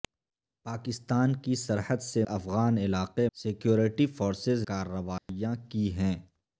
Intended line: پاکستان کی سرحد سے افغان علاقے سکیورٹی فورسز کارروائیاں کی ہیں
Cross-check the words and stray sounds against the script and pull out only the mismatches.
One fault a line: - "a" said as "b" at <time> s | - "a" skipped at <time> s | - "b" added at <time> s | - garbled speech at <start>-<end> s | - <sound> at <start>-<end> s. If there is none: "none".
- dropout at 5.2-5.3 s